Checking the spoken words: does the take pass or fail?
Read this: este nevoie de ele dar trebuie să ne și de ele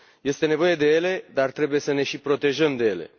fail